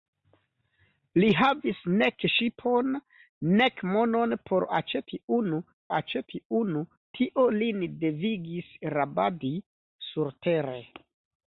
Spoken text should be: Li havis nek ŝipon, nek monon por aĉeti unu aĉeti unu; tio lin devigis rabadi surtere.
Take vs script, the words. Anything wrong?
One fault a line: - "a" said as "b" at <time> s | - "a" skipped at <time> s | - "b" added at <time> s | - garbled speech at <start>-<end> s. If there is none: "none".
none